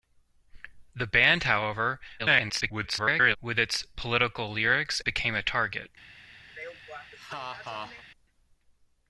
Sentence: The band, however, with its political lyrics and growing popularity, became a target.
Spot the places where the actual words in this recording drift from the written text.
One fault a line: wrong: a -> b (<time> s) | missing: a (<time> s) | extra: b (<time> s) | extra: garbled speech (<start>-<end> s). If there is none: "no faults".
extra: garbled speech (2.2-3.4 s)
missing: and growing popularity (5.0 s)